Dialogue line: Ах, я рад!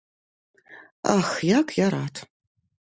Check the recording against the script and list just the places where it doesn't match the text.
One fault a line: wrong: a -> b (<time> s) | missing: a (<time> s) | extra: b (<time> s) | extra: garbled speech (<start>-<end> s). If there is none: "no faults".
extra: як (1.4 s)